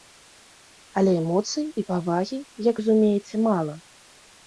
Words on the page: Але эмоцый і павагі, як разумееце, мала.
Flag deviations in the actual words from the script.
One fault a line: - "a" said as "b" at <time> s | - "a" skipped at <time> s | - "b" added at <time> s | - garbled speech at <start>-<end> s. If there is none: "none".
none